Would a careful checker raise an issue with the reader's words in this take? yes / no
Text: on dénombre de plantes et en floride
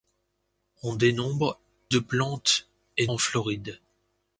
no